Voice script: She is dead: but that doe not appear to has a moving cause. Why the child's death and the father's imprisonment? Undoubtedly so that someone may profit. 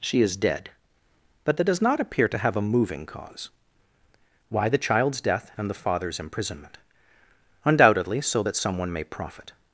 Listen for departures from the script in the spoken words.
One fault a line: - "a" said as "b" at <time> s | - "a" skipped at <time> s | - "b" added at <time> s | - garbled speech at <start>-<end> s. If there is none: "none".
- "doe" said as "does" at 1.6 s
- "has" said as "have" at 2.4 s